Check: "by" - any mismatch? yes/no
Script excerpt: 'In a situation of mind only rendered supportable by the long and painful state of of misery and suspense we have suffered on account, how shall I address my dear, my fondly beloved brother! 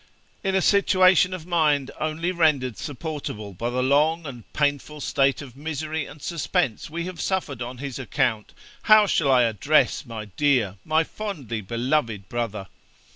no